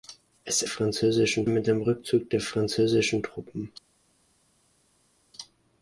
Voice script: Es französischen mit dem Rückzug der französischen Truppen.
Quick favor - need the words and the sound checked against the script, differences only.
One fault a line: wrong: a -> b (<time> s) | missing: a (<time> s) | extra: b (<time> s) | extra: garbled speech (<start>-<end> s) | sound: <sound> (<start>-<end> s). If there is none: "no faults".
no faults